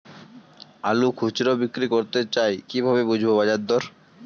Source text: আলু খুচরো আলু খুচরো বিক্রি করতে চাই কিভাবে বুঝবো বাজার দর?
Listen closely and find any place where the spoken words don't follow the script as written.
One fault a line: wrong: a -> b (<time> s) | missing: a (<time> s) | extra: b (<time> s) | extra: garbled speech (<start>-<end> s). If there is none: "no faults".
missing: আলু খুচরো (1.5 s)